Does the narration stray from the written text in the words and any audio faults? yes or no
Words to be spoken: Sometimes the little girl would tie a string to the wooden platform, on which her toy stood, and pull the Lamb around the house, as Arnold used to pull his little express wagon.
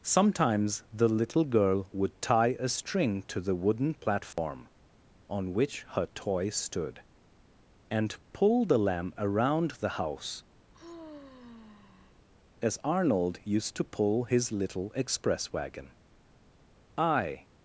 yes